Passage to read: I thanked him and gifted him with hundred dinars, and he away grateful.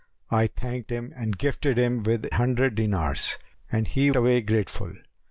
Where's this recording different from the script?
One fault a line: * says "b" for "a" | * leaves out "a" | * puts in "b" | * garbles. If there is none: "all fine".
all fine